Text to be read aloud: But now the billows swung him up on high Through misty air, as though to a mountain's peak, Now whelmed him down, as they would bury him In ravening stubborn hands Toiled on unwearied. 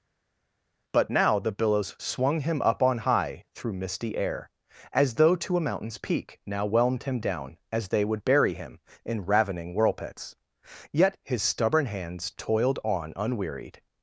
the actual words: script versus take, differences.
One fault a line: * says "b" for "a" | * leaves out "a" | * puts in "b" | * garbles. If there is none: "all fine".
* puts in "whirlpits yet his"